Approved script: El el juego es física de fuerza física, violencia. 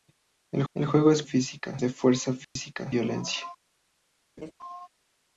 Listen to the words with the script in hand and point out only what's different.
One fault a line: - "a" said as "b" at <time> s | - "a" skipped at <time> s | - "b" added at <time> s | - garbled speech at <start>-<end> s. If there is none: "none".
none